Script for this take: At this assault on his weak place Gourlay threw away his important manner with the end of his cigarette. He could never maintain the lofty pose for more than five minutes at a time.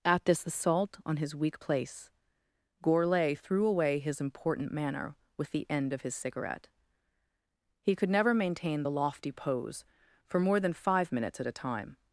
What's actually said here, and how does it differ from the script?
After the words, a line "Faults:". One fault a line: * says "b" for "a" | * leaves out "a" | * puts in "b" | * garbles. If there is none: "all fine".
At this assault on his weak place Gourlay threw away his important manner with the end of his cigarette. He could never maintain the lofty pose for more than five minutes at a time.
Faults:
all fine